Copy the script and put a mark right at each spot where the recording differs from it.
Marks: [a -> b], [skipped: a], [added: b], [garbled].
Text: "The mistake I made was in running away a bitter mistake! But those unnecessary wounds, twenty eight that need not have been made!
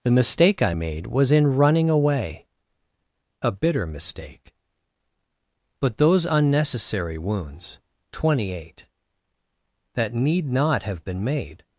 "The mistake I made was in running away a bitter mistake! But those unnecessary wounds, twenty eight that need not have been made!